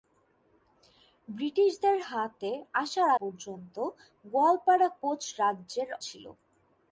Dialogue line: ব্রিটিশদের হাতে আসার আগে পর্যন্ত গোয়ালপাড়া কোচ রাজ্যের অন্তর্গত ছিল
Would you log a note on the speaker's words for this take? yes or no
yes